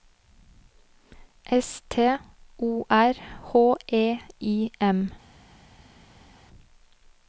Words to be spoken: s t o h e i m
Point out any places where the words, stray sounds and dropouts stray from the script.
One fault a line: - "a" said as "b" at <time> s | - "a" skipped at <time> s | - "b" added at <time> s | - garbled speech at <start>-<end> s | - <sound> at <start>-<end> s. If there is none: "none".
- "r" added at 2.9 s